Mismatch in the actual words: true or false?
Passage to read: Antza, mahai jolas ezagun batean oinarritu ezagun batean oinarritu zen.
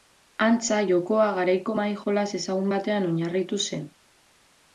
true